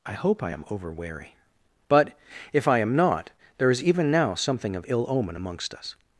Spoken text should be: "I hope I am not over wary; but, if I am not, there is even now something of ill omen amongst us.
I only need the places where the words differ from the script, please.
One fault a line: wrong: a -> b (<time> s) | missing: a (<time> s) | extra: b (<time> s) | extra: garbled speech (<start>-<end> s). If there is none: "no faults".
missing: not (0.6 s)